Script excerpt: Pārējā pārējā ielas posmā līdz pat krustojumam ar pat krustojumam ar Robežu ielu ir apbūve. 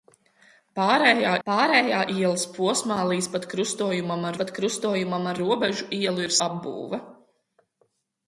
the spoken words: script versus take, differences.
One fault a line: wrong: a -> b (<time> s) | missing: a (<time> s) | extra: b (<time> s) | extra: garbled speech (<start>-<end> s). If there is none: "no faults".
no faults